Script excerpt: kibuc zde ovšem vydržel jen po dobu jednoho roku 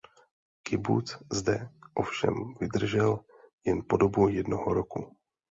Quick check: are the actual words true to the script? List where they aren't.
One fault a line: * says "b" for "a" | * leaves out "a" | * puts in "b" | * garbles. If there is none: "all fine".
all fine